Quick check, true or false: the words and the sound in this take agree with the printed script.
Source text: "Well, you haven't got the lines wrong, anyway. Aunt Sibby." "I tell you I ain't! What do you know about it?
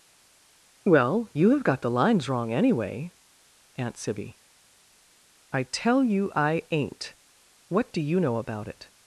false